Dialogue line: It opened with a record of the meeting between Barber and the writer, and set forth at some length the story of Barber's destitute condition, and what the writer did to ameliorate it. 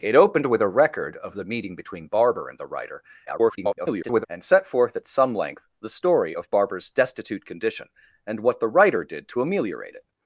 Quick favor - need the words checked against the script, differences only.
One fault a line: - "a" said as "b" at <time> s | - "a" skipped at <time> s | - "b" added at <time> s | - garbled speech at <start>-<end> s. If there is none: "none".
- garbled speech at 3.3-4.3 s